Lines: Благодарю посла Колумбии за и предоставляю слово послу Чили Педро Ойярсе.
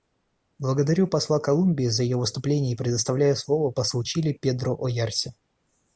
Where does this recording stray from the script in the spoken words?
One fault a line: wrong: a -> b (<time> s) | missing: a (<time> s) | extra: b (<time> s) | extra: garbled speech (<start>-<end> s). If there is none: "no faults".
extra: ее выступление (2.0 s)